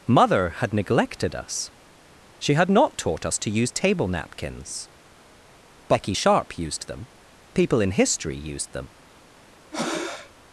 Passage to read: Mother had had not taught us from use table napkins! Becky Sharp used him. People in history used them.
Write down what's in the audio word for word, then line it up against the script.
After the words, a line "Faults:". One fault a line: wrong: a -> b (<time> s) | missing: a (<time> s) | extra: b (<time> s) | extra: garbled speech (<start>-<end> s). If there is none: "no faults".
Mother had neglected us she had not taught us to use table napkins! Becky Sharp used them. People in history used them.
Faults:
extra: neglected us she (0.7 s)
wrong: from -> to (3.4 s)
wrong: him -> them (6.9 s)